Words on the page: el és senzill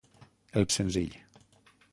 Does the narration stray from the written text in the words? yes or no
no